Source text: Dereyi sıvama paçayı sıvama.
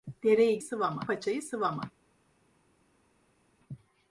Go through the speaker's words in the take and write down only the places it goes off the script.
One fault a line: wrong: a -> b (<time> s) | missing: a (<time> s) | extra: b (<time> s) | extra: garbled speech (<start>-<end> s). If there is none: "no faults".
no faults